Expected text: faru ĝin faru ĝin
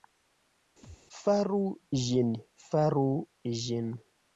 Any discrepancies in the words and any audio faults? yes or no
yes